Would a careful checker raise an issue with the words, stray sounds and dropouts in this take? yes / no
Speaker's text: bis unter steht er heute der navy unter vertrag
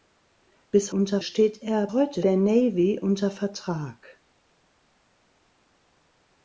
no